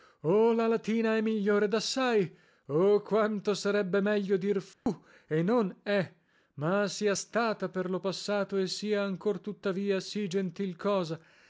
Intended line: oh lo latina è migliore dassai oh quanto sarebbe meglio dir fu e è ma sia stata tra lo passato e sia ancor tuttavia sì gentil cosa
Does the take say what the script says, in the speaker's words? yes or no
no